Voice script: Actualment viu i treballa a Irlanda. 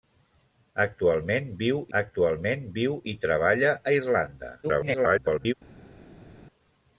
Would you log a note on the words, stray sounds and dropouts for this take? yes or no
yes